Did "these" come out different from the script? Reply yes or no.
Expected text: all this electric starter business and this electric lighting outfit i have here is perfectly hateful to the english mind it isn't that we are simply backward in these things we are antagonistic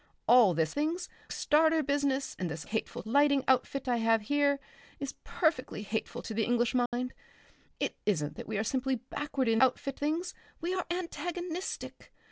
yes